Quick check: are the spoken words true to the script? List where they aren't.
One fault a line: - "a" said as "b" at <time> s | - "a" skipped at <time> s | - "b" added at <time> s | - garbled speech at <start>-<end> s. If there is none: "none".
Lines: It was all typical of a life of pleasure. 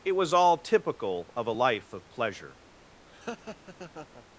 none